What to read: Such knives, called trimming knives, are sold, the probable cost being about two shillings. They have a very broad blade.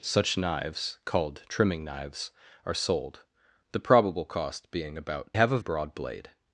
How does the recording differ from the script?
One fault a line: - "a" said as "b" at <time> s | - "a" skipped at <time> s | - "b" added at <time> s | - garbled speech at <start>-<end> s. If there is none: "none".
- "two shillings They" skipped at 5.3 s
- "very" skipped at 5.6 s